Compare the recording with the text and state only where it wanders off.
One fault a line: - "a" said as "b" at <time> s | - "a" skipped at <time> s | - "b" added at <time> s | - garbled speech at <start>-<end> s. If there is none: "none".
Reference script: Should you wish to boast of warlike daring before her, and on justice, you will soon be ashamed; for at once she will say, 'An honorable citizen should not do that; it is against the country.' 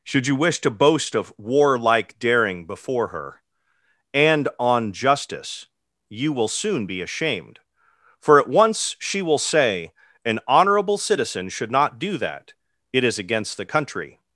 none